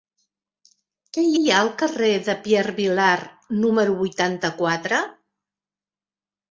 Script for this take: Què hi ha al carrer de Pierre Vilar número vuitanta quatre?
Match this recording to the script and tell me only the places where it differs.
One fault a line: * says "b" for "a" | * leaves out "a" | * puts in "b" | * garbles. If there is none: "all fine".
* puts in "hi"